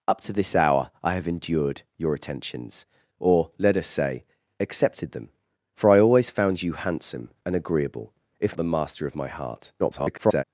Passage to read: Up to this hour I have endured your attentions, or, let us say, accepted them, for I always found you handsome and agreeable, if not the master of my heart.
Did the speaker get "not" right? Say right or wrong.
wrong